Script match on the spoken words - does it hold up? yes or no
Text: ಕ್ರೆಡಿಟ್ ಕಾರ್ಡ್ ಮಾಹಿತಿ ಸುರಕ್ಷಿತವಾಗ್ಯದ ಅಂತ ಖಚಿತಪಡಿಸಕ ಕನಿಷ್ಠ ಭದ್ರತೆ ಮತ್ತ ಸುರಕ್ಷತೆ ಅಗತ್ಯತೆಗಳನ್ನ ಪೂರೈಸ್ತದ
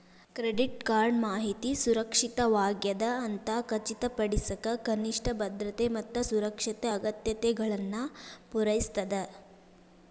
yes